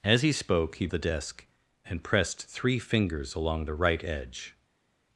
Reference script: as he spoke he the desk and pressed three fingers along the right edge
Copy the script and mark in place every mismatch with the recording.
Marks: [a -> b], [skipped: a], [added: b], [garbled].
as he spoke he the desk and pressed three fingers along the right edge